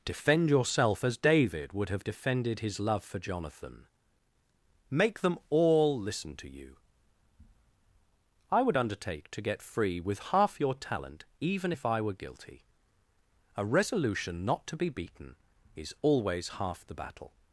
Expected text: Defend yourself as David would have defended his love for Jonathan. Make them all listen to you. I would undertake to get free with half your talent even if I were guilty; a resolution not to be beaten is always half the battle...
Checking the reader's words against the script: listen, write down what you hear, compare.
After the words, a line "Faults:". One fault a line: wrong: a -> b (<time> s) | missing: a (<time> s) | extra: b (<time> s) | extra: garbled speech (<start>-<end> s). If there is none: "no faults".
Defend yourself as David would have defended his love for Jonathan. Make them all listen to you. I would undertake to get free with half your talent even if I were guilty; a resolution not to be beaten is always half the battle...
Faults:
no faults